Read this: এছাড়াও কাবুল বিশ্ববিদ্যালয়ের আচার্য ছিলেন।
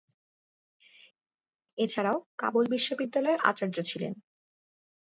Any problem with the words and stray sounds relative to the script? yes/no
no